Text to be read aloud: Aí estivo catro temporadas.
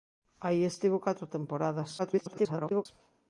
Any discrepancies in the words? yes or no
yes